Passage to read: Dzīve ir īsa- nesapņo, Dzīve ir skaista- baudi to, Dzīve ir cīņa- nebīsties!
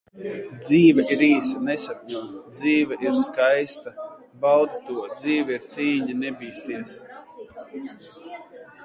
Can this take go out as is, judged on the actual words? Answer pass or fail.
pass